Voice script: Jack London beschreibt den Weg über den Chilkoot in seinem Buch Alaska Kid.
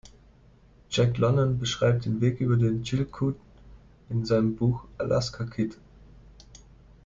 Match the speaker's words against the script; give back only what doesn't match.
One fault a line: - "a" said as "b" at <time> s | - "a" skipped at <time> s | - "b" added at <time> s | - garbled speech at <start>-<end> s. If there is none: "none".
none